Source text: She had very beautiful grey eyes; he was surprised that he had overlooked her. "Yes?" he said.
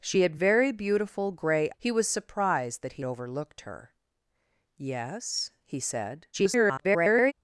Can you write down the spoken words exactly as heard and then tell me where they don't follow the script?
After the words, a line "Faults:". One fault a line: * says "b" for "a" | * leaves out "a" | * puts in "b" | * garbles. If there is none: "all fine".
She had very beautiful grey; he was surprised that he overlooked her. "Yes?" he said. [garbled]
Faults:
* leaves out "eyes"
* leaves out "had"
* garbles